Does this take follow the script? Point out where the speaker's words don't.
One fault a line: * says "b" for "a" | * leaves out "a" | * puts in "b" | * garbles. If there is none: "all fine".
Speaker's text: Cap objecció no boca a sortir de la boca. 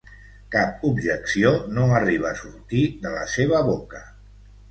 * says "arriba" for "boca"
* puts in "seva"